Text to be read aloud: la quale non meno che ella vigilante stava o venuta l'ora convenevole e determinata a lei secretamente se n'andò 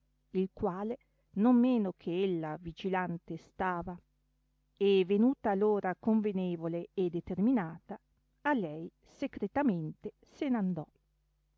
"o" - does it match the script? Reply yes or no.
no